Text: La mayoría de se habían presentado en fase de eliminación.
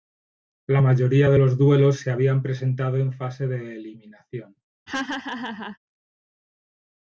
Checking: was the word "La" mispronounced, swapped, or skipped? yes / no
no